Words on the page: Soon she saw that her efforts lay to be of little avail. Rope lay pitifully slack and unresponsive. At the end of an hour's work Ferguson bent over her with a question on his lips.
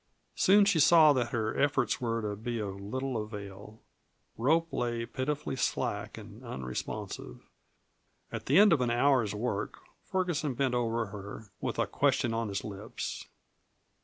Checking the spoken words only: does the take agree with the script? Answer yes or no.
no